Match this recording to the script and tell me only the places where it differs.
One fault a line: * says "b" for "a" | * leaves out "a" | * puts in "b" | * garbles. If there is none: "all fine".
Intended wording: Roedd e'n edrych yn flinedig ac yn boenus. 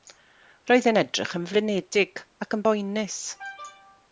all fine